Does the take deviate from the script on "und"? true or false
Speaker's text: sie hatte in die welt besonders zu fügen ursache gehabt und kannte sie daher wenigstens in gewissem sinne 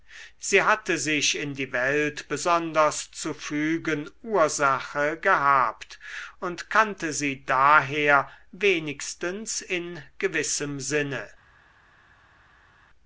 false